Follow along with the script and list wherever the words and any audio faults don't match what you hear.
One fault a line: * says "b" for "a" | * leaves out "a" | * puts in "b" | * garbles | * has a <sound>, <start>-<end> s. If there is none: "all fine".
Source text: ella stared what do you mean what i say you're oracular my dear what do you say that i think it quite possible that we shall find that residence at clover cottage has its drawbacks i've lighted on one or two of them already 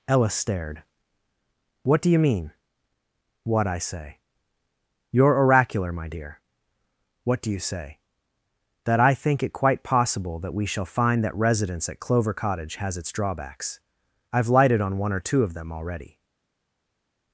all fine